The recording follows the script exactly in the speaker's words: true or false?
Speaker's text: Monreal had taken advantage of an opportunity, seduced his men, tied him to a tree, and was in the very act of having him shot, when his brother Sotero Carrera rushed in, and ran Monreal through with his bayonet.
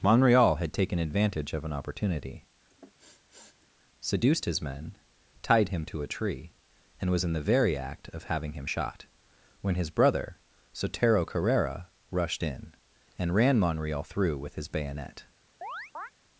true